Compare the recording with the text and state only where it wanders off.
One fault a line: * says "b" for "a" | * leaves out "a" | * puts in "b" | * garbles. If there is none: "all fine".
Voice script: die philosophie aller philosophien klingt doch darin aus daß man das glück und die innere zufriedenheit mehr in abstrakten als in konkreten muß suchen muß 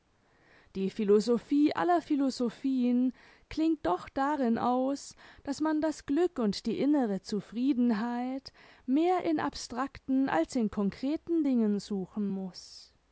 * says "dingen" for "muß"